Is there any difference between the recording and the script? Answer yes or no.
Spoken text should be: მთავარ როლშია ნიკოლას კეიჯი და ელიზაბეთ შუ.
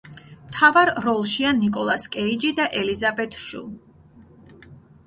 no